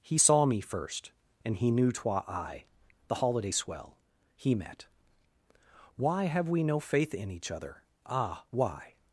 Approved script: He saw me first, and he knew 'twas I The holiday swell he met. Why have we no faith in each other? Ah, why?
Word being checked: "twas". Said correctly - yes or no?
no